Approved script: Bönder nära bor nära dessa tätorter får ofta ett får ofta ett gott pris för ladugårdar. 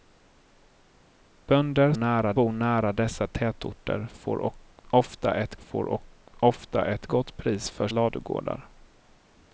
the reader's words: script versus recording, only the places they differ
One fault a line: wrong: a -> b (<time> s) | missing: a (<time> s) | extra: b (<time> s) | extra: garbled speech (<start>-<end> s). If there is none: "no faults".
no faults